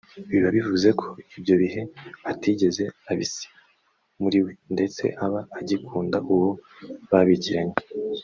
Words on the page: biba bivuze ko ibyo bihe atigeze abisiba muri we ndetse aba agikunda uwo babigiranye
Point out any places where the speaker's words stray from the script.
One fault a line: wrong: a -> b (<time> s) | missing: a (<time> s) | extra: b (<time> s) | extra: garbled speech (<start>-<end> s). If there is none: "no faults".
no faults